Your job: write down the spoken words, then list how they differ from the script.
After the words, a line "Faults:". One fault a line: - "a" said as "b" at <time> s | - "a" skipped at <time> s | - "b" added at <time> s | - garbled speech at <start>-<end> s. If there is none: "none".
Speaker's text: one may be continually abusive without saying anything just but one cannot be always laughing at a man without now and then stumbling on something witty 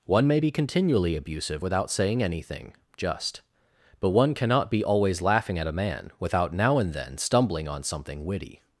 one may be continually abusive without saying anything just but one cannot be always laughing at a man without now and then stumbling on something witty
Faults:
none